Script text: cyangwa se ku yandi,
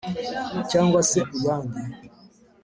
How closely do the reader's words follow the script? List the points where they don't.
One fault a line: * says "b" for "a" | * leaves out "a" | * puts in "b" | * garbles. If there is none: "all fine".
all fine